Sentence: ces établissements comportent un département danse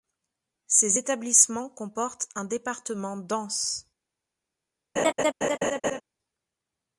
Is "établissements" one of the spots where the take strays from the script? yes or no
no